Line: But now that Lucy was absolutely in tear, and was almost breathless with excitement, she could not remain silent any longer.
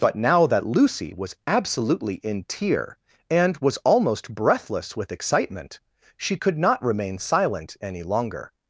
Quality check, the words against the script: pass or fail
pass